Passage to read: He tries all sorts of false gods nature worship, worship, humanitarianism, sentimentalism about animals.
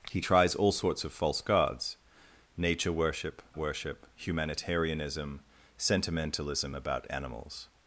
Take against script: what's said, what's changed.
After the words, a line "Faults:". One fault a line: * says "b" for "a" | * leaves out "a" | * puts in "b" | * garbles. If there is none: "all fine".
He tries all sorts of false gods nature worship, worship, humanitarianism, sentimentalism about animals.
Faults:
all fine